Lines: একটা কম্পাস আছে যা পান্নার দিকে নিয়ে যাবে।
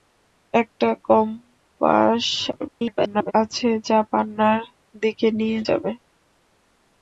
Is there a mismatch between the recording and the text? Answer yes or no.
yes